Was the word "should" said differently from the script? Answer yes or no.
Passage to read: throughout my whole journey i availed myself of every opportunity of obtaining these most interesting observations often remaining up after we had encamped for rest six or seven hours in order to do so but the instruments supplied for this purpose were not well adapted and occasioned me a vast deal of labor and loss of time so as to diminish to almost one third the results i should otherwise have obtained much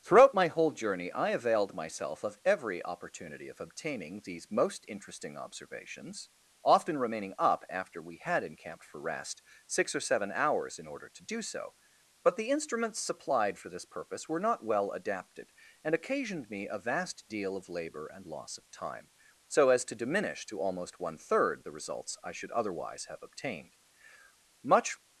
no